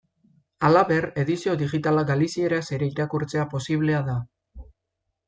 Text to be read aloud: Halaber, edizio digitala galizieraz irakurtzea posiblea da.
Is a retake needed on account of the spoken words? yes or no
yes